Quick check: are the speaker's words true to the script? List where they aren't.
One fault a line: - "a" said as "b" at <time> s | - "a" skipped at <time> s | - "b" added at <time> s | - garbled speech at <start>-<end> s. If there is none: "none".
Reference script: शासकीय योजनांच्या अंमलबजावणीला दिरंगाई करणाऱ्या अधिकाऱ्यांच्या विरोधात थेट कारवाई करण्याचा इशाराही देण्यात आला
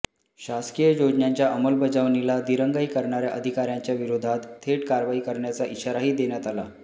none